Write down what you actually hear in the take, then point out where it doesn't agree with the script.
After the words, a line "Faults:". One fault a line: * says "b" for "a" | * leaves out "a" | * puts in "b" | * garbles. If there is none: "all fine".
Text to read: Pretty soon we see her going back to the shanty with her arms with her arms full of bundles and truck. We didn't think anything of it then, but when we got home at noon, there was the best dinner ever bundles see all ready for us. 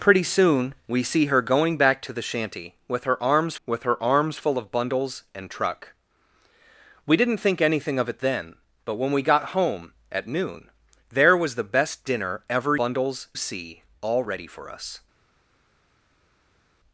Pretty soon we see her going back to the shanty with her arms with her arms full of bundles and truck. We didn't think anything of it then, but when we got home at noon, there was the best dinner ever bundles see all ready for us.
Faults:
all fine